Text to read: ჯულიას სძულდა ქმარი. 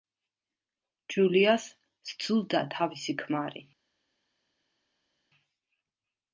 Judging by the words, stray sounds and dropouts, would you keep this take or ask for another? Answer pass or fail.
fail